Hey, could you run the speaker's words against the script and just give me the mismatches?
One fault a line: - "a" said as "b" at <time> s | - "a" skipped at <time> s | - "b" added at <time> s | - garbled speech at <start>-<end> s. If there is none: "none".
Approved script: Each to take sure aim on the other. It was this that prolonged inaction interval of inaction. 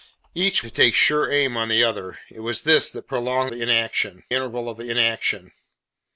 none